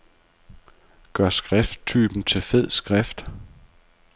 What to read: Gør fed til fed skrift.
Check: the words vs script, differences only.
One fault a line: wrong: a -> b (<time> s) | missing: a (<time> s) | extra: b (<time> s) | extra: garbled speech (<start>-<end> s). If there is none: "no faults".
wrong: fed -> skrifttypen (1.3 s)